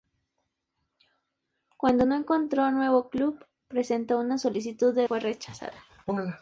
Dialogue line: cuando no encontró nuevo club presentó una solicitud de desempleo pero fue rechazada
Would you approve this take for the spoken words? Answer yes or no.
no